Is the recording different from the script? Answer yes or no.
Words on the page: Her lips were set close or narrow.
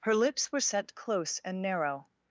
yes